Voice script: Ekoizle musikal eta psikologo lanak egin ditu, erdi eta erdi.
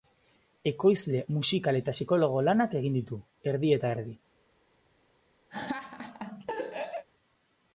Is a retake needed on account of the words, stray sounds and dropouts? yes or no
yes